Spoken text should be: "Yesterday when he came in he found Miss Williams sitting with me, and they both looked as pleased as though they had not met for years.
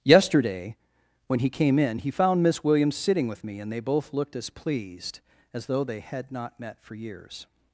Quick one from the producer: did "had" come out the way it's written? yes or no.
yes